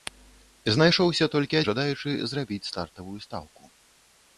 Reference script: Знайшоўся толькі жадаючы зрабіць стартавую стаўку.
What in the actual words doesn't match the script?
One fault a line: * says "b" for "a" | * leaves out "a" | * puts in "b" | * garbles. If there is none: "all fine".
all fine